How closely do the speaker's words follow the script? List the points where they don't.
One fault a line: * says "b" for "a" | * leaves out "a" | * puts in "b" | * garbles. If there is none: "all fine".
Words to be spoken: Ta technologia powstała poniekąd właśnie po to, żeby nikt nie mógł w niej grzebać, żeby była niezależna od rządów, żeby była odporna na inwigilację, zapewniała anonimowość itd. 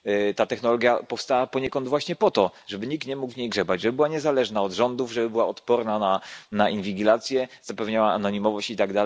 all fine